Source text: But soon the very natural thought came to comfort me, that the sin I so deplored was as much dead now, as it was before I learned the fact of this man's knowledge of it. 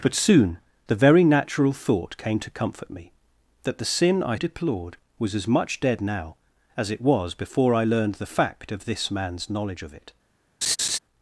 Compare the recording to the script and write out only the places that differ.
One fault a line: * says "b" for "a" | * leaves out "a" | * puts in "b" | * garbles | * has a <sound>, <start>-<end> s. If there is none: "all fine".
* leaves out "so"
* has a laugh, 10.6-11.0 s